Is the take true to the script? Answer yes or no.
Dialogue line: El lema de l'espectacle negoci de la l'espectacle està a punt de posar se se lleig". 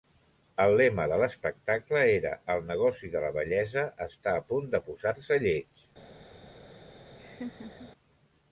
no